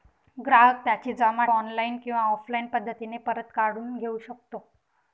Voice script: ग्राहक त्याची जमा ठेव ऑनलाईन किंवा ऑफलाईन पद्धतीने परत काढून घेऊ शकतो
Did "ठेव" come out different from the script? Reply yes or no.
yes